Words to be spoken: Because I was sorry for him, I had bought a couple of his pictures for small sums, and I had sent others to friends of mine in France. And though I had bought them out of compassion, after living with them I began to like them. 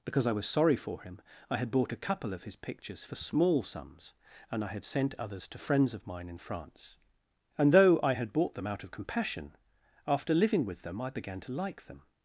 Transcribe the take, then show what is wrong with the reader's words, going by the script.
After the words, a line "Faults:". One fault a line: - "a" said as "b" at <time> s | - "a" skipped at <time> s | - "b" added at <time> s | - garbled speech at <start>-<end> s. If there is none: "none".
Because I was sorry for him, I had bought a couple of his pictures for small sums, and I had sent others to friends of mine in France. And though I had bought them out of compassion, after living with them I began to like them.
Faults:
none